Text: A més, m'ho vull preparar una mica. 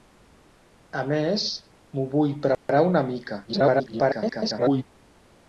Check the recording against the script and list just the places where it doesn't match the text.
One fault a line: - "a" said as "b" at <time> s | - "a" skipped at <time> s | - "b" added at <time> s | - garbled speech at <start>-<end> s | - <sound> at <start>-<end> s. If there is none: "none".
- dropout at 2.5-2.7 s
- garbled speech at 3.5-4.8 s